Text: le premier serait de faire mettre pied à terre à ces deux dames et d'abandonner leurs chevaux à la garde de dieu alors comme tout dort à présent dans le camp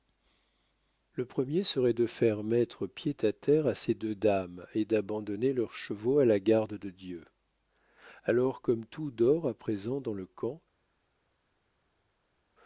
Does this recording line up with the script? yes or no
yes